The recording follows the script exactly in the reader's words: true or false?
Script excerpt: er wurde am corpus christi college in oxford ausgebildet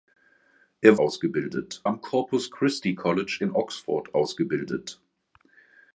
false